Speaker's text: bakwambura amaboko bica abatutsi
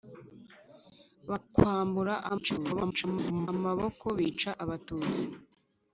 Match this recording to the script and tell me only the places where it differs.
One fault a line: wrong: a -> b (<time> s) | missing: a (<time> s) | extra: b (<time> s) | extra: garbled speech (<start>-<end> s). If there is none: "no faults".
extra: garbled speech (2.3-3.5 s)